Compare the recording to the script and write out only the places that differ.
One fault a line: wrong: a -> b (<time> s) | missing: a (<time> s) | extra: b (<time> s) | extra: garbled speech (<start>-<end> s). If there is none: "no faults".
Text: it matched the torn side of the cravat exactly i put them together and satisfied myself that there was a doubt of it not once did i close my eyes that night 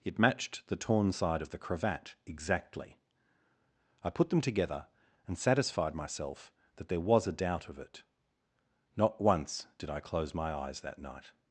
no faults